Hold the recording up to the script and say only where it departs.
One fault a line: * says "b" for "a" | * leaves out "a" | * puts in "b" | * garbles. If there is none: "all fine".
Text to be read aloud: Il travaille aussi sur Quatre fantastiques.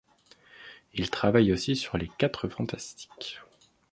* puts in "les"